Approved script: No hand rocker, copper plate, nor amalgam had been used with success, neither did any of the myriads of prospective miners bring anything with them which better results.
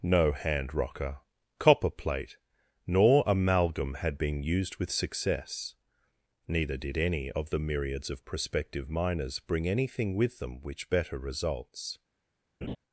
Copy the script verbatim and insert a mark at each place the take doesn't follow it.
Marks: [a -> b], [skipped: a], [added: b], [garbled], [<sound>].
No hand rocker, copper plate, nor amalgam had been used with success, neither did any of the myriads of prospective miners bring anything with them which better results. [laugh]